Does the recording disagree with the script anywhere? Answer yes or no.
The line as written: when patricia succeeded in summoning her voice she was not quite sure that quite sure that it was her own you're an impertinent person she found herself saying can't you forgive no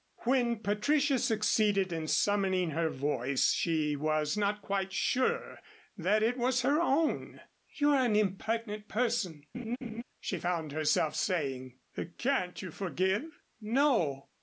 yes